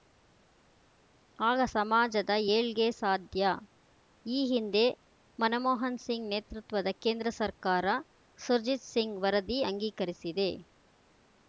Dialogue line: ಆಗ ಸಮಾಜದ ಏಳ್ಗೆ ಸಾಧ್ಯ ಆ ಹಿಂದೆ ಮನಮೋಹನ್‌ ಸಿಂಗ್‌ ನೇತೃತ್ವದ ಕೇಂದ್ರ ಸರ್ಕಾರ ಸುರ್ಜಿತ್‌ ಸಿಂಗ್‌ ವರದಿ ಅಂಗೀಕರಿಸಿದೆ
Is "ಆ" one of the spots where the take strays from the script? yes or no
yes